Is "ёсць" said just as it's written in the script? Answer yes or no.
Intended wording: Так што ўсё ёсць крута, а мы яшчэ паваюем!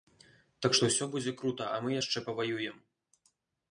no